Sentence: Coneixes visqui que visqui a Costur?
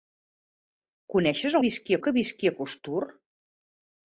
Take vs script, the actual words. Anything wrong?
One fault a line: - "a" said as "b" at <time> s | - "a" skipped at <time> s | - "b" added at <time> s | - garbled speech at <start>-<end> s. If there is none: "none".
none